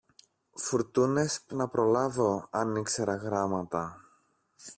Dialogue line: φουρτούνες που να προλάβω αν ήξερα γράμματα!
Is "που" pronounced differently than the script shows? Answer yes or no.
no